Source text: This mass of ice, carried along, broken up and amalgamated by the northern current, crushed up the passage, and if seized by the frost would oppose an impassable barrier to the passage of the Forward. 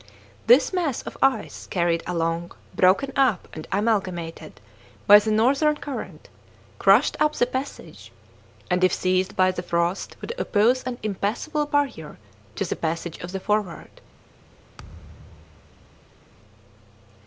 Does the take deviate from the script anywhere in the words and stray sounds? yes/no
yes